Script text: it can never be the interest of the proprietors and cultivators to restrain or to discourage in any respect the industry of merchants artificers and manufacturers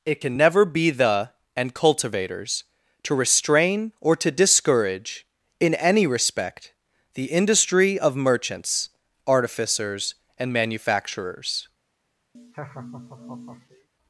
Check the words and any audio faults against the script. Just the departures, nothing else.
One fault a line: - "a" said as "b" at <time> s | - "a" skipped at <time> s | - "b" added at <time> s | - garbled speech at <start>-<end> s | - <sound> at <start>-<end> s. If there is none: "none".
- "interest of the proprietors" skipped at 1.3 s
- laugh at 12.3-13.9 s